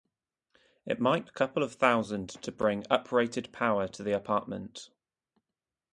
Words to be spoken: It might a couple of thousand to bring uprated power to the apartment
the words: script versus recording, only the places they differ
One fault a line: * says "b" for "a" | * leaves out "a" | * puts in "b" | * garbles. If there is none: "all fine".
all fine